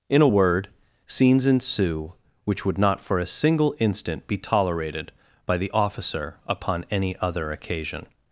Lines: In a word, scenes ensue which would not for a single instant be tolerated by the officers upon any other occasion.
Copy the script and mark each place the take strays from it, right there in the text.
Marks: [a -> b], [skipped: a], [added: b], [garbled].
In a word, scenes ensue which would not for a single instant be tolerated by the [officers -> officer] upon any other occasion.